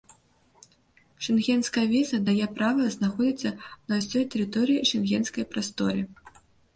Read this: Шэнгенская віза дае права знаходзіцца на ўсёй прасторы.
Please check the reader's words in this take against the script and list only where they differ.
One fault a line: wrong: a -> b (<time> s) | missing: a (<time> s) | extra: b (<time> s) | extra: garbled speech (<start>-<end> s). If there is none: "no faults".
extra: тэрыторыі шэнгенскай (4.3 s)